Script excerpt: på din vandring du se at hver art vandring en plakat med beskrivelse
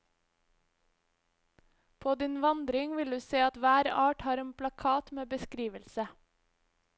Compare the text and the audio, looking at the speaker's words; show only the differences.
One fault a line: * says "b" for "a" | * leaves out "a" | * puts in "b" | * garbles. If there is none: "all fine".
* puts in "vil"
* says "har" for "vandring"